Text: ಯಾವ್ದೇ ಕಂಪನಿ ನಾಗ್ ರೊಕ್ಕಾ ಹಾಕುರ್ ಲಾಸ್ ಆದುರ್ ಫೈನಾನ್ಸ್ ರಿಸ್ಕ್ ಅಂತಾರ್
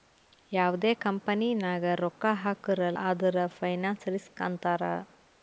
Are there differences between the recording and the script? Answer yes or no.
yes